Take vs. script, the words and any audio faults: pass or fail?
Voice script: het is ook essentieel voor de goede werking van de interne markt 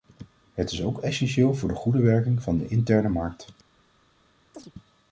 fail